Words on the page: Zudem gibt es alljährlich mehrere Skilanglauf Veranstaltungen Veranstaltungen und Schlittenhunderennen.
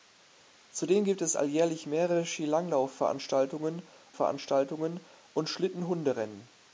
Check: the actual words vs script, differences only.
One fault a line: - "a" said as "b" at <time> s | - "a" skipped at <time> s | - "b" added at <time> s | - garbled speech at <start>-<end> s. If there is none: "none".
none